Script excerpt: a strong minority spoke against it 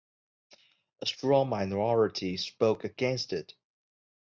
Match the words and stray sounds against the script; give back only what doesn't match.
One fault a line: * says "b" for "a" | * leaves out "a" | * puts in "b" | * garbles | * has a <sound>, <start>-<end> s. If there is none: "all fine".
all fine